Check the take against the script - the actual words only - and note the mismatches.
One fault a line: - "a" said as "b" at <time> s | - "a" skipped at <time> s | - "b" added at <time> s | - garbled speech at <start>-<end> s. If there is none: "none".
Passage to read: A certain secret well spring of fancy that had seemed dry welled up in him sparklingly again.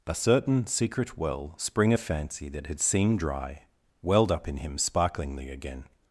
none